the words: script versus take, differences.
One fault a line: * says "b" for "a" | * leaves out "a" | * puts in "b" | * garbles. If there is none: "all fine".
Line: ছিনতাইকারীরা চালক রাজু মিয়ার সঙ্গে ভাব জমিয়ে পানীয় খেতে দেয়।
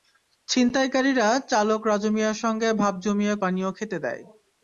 all fine